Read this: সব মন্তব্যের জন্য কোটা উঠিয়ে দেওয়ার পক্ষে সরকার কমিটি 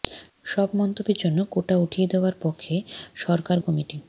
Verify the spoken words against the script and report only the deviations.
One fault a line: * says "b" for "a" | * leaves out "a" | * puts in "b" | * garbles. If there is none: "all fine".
all fine